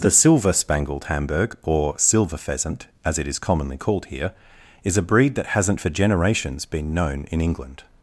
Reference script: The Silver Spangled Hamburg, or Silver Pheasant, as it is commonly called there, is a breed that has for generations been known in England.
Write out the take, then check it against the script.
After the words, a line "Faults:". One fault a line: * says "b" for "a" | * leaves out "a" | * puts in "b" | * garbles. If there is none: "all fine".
The Silver Spangled Hamburg, or Silver Pheasant, as it is commonly called here, is a breed that hasn't for generations been known in England.
Faults:
* says "here" for "there"
* says "hasn't" for "has"